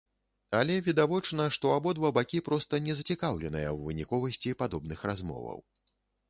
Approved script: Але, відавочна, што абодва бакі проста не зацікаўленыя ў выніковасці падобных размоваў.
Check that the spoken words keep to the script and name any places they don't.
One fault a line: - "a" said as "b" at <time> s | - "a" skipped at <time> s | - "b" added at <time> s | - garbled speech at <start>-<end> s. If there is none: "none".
none